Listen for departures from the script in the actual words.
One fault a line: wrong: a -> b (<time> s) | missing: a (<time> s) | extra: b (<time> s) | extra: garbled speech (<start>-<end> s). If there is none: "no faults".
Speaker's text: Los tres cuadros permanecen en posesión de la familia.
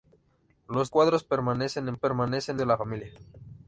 missing: tres (0.9 s)
wrong: posesión -> permanecen (1.9 s)